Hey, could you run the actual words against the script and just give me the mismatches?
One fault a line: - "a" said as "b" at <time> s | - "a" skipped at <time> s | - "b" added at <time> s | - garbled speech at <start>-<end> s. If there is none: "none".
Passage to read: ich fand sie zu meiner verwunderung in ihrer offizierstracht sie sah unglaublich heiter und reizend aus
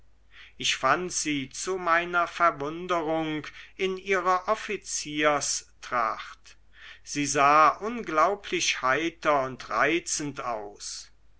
none